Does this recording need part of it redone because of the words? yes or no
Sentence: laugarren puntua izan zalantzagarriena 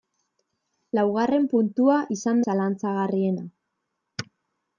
no